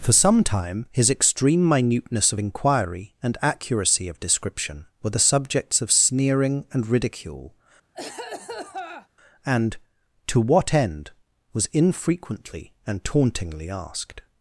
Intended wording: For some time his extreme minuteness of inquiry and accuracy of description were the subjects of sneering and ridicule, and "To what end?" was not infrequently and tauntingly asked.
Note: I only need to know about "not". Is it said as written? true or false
false